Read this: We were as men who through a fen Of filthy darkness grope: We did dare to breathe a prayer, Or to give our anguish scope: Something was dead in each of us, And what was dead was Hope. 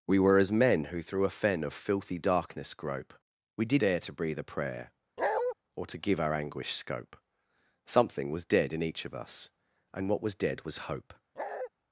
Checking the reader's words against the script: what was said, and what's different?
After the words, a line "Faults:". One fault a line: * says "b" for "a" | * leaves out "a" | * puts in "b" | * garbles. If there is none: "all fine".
We were as men who through a fen Of filthy darkness grope: We did dare to breathe a prayer, Or to give our anguish scope: Something was dead in each of us, And what was dead was Hope.
Faults:
all fine